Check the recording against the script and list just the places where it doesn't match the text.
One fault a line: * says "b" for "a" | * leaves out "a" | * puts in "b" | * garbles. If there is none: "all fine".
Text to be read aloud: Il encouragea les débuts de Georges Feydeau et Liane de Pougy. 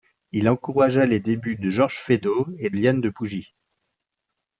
all fine